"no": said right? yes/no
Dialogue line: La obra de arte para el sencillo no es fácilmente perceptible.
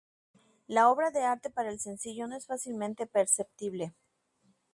yes